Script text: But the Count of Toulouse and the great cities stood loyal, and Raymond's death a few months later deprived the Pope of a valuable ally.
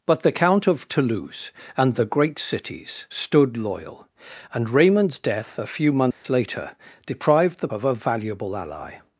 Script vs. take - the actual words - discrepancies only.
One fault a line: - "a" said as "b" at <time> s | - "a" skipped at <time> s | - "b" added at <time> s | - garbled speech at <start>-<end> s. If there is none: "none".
- "Pope" skipped at 7.7 s